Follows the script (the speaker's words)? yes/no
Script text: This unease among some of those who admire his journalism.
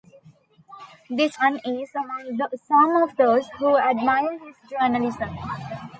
yes